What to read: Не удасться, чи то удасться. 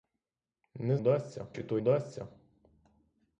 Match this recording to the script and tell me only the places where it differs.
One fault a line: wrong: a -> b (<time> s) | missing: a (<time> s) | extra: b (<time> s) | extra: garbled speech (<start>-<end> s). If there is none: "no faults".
no faults